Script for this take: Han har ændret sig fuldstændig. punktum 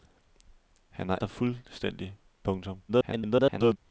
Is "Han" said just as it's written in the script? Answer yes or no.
yes